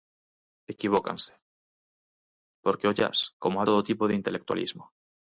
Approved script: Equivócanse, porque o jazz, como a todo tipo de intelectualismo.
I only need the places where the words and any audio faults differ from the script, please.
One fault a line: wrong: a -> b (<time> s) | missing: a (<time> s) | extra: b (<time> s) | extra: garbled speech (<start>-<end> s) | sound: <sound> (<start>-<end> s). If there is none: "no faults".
no faults